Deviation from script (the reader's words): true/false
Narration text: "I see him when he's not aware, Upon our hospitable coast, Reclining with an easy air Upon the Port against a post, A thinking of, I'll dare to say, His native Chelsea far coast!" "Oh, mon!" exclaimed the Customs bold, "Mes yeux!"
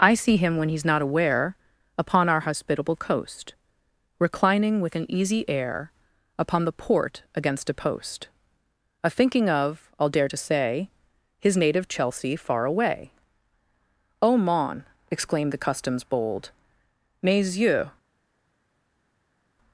true